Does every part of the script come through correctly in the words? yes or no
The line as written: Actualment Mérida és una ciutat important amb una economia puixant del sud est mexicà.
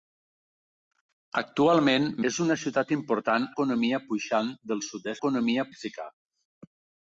no